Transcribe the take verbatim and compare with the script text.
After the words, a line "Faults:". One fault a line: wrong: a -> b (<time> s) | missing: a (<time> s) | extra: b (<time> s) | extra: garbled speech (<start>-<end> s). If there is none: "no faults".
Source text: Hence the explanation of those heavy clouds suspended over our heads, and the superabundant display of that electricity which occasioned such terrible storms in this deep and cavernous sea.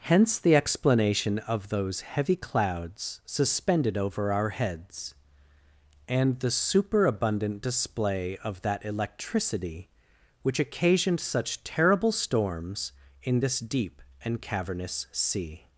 Hence the explanation of those heavy clouds suspended over our heads, and the superabundant display of that electricity which occasioned such terrible storms in this deep and cavernous sea.
Faults:
no faults